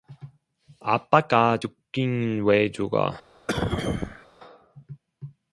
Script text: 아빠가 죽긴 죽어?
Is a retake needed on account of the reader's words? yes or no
yes